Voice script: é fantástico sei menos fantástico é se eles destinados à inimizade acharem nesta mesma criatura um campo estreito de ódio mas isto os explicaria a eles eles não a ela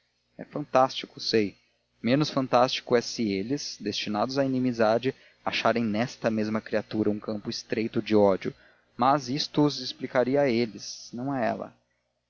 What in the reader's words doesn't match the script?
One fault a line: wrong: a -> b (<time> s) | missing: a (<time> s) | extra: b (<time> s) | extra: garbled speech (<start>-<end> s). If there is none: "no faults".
missing: eles (11.1 s)